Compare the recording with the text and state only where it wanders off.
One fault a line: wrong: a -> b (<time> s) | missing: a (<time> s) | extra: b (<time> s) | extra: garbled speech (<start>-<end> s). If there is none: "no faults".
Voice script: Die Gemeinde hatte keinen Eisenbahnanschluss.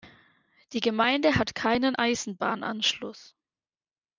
wrong: hatte -> hat (1.4 s)